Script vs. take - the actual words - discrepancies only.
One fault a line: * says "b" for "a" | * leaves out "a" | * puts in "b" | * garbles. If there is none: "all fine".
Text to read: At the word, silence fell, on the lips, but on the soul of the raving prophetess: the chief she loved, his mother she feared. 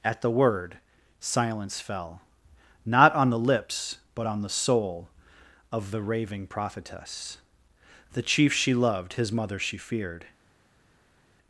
* puts in "not"